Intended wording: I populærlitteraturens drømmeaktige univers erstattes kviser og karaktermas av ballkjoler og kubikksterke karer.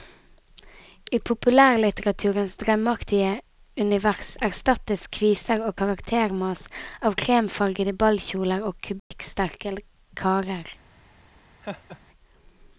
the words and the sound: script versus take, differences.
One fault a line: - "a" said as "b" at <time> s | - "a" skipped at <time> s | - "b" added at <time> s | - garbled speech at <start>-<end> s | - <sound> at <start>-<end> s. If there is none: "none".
- "kremfargede" added at 7.2 s
- dropout at 9.0-9.1 s
- laugh at 11.6-12.0 s